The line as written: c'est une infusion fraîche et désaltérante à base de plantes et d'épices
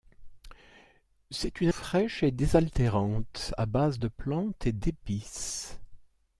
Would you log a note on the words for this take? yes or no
yes